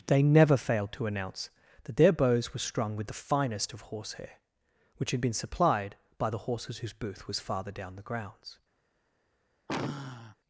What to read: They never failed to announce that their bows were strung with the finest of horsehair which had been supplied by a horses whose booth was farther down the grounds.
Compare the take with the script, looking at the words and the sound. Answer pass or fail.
fail